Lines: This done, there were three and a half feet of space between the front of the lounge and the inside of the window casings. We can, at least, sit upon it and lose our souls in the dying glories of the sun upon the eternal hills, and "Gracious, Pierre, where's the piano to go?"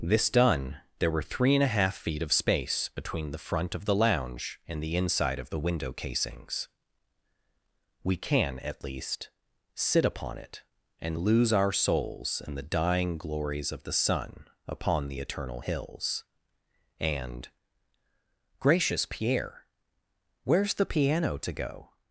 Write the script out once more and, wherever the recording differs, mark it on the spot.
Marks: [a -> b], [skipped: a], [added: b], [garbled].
This done, there were three and a half feet of space between the front of the lounge and the inside of the window casings. We can, at least, sit upon it and lose our souls in the dying glories of the sun upon the eternal hills, and "Gracious, Pierre, where's the piano to go?"